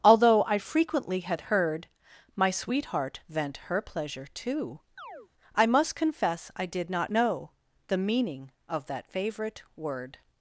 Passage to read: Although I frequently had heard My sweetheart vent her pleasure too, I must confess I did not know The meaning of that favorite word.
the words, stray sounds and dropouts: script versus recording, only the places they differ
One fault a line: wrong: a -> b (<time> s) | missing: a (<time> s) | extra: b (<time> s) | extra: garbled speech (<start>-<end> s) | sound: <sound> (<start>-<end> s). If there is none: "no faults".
sound: chirp (5.0-5.3 s)